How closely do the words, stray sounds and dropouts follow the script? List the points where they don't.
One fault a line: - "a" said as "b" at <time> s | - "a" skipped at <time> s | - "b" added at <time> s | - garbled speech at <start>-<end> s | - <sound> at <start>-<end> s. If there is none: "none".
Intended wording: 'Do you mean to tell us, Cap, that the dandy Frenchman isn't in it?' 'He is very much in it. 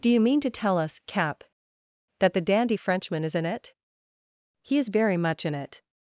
- "isn't" said as "is" at 3.2 s